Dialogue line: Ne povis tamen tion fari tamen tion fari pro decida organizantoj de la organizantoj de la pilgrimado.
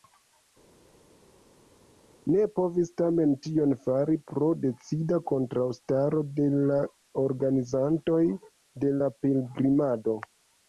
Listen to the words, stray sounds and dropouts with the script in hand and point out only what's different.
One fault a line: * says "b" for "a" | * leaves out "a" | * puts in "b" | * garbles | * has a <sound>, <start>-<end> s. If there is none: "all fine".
* leaves out "tamen tion fari"
* says "kontraŭstaro" for "organizantoj"